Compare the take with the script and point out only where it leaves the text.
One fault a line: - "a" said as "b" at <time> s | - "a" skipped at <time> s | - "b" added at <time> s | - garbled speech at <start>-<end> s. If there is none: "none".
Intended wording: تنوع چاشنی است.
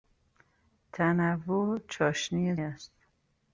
none